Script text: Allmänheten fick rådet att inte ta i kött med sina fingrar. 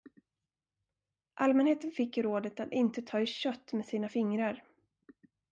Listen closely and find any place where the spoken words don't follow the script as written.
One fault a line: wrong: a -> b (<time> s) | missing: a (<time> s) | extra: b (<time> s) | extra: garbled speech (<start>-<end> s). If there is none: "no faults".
no faults